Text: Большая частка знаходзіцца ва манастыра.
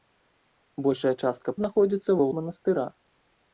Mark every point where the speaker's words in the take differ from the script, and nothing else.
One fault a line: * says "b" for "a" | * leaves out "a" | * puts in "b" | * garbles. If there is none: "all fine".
all fine